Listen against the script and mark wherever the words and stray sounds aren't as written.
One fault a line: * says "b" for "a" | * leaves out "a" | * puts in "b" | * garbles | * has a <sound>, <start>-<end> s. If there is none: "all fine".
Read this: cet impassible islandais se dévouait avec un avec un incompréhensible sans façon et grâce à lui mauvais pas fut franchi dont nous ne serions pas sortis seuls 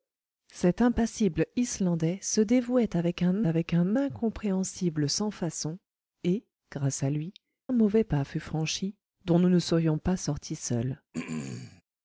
* has a throat clearing, 11.1-11.8 s